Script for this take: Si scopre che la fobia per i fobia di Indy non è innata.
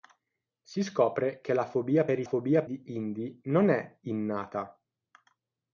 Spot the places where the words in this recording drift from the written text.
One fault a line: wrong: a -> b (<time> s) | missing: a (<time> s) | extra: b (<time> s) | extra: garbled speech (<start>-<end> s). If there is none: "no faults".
no faults